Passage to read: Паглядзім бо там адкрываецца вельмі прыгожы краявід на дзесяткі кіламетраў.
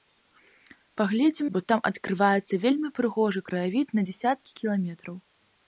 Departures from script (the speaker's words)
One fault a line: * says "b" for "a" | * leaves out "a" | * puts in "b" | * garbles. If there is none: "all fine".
all fine